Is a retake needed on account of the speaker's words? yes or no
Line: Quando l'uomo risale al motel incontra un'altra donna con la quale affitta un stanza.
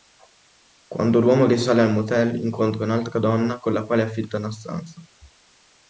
yes